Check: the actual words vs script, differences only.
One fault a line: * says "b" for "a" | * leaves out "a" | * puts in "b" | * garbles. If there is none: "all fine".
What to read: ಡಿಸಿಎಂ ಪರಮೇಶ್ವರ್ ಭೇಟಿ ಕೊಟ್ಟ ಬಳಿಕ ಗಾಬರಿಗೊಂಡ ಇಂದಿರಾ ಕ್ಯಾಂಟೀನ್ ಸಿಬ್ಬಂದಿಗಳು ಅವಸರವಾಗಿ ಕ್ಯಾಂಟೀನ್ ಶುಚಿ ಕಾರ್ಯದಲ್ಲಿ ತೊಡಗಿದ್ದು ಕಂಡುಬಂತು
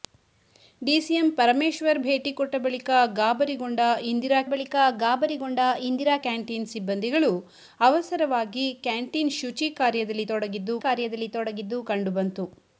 * puts in "ಬಳಿಕ ಗಾಬರಿಗೊಂಡ ಇಂದಿರಾ"
* puts in "ಕಾರ್ಯದಲ್ಲಿ ತೊಡಗಿದ್ದು"